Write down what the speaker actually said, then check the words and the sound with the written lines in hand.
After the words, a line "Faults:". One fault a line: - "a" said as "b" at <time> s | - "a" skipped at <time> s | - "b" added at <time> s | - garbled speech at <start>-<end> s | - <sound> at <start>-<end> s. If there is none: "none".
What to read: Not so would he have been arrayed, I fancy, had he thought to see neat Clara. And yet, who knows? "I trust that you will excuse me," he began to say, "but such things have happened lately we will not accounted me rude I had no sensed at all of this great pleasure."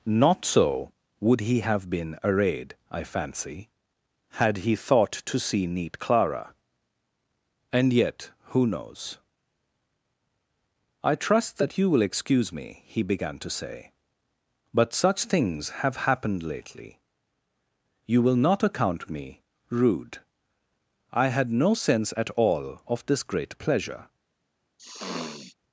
Not so would he have been arrayed, I fancy, had he thought to see neat Clara. And yet, who knows? "I trust that you will excuse me," he began to say, "but such things have happened lately you will not account me rude I had no sense at all of this great pleasure."
Faults:
- "we" said as "you" at 18.1 s
- "accounted" said as "account" at 18.6 s
- "sensed" said as "sense" at 21.8 s
- sniff at 24.8-25.6 s